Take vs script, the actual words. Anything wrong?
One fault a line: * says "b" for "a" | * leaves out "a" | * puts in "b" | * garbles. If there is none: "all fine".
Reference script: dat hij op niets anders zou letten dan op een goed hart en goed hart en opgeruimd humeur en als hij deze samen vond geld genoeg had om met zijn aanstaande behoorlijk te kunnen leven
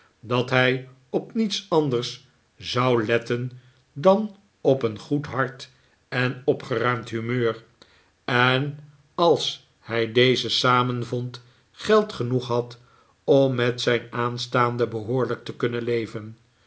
* leaves out "goed hart en"